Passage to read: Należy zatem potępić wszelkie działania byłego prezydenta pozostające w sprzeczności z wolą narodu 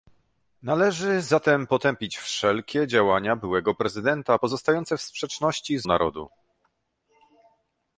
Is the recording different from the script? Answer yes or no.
yes